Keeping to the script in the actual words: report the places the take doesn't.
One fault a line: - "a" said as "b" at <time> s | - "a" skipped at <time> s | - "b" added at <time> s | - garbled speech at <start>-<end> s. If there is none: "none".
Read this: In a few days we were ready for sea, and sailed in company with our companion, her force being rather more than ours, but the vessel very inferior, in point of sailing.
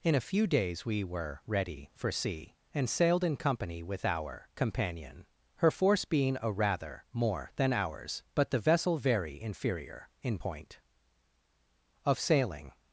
- "a" added at 6.4 s